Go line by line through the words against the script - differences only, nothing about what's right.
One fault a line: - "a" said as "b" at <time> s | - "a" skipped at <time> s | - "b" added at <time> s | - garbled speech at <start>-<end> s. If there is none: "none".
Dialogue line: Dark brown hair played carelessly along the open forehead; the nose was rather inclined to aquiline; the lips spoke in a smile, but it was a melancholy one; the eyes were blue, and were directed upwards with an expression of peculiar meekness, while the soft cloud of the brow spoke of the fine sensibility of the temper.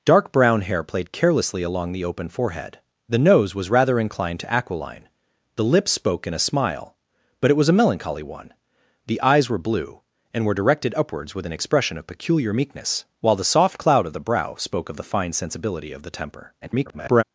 - garbled speech at 16.6-17.2 s